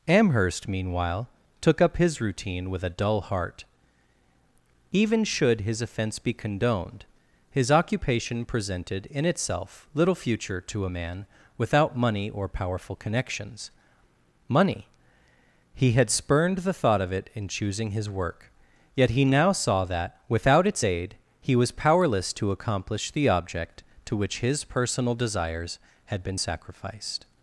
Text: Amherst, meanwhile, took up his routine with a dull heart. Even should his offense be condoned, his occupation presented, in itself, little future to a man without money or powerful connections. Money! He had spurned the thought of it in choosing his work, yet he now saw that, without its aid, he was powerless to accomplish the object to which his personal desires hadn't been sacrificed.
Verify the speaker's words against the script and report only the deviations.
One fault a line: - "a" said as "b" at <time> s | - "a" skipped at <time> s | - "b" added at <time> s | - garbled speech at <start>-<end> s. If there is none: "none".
- "hadn't" said as "had" at 26.1 s